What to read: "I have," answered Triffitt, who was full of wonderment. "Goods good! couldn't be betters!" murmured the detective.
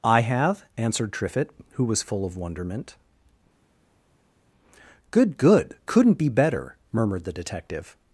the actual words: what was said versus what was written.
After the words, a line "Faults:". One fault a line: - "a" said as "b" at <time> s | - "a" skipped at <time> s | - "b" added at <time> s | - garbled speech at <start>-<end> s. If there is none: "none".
"I have," answered Triffitt, who was full of wonderment. "Good good! couldn't be better!" murmured the detective.
Faults:
- "Goods" said as "Good" at 5.1 s
- "betters" said as "better" at 6.3 s